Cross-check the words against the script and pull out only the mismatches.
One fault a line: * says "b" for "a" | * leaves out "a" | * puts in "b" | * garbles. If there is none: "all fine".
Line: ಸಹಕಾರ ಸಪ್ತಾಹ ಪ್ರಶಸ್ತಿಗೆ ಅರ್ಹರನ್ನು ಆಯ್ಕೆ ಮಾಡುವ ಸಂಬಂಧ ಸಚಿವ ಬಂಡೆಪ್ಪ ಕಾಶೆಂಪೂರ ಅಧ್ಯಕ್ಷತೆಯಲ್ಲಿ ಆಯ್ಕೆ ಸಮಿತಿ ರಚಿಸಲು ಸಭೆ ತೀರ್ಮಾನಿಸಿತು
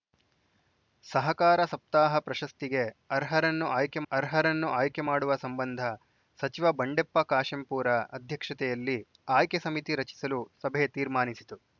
* puts in "ಅರ್ಹರನ್ನು ಆಯ್ಕೆ"